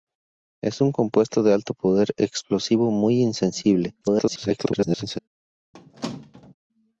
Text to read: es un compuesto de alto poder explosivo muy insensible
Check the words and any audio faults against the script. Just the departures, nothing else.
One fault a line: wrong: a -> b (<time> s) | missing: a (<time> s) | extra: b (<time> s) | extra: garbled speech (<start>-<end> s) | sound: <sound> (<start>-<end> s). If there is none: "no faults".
extra: garbled speech (4.0-5.2 s)
sound: squeak (5.7-6.5 s)